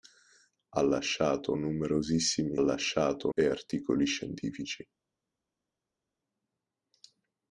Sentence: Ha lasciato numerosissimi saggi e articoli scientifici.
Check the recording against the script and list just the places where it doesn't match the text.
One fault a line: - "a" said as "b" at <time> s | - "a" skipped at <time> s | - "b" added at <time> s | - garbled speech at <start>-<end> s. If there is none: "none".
- "saggi" said as "lasciato" at 2.6 s